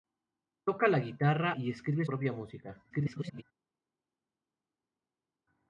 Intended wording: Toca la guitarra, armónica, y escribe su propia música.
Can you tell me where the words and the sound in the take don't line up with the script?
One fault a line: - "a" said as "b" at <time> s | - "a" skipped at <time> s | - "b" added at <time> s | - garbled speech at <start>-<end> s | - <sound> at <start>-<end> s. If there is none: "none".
- "armónica" skipped at 1.5 s
- "su" skipped at 2.0 s
- garbled speech at 2.9-3.4 s